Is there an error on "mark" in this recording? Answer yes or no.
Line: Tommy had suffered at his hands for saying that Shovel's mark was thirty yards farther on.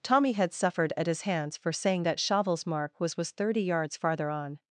no